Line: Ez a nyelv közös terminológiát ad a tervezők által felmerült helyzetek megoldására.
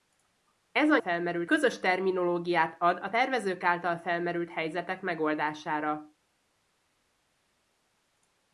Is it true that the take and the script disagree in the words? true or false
true